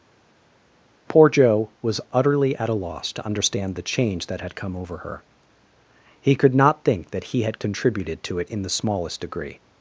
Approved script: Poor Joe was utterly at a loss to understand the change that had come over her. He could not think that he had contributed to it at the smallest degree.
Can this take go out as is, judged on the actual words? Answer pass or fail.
fail